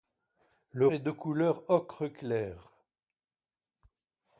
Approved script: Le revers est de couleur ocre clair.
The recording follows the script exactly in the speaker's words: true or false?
false